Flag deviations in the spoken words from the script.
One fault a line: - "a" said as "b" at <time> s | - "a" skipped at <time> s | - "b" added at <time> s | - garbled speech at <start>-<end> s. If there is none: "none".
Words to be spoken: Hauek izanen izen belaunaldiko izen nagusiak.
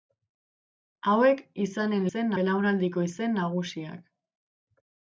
none